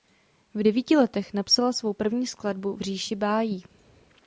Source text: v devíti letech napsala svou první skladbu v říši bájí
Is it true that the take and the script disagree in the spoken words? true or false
false